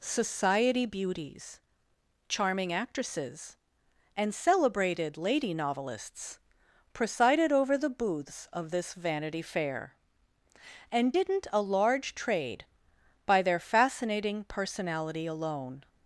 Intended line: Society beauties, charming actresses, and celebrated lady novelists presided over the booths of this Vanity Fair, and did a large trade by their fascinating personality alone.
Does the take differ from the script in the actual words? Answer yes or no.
yes